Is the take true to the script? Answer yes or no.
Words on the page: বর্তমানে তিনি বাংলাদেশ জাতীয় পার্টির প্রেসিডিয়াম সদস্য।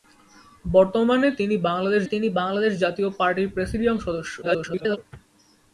no